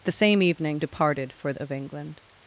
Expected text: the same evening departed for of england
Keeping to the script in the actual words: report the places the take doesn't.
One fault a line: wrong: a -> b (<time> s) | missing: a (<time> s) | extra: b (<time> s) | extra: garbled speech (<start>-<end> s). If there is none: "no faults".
no faults